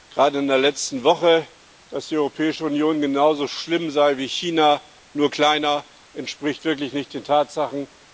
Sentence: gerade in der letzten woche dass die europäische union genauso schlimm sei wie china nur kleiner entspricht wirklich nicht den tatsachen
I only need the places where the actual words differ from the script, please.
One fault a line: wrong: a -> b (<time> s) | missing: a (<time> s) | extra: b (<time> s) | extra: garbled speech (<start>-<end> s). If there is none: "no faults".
no faults